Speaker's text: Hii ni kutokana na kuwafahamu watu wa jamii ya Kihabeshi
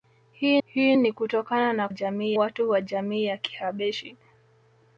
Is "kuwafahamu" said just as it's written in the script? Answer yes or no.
no